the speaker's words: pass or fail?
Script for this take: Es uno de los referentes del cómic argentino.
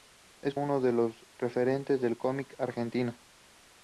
pass